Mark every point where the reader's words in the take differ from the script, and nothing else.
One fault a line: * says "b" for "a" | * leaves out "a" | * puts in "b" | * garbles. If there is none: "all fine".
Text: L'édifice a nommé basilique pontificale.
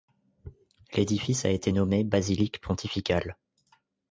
* puts in "été"